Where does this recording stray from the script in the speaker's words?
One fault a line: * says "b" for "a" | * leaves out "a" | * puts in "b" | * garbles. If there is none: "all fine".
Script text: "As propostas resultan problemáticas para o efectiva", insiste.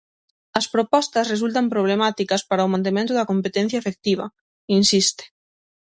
* puts in "mantemento da competencia"